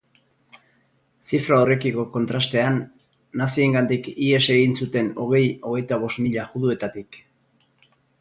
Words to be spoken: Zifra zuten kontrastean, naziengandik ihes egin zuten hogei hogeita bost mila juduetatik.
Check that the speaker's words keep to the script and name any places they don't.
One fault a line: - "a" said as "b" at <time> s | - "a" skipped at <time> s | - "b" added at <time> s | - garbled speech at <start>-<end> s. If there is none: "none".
- "zuten" said as "horrekiko" at 1.6 s